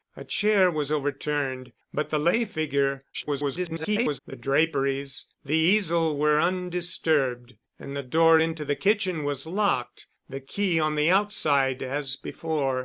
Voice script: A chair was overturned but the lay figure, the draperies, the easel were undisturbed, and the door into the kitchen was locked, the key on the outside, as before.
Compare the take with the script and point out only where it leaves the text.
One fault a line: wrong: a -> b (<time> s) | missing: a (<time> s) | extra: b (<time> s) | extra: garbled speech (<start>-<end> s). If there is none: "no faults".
extra: garbled speech (3.1-4.2 s)